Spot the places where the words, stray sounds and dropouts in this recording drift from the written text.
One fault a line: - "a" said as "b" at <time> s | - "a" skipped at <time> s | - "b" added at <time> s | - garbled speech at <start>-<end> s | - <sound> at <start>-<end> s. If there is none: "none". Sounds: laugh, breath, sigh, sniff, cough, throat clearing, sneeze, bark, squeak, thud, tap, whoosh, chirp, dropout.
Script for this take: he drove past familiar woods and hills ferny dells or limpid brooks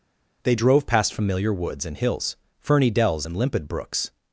- "he" said as "they" at 0.4 s
- "or" said as "and" at 3.2 s